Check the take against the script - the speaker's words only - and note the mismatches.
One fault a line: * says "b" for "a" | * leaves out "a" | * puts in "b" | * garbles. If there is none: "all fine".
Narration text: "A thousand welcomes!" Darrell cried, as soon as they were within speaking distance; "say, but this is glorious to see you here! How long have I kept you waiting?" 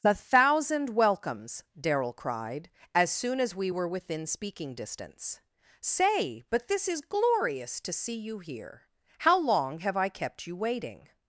* says "we" for "they"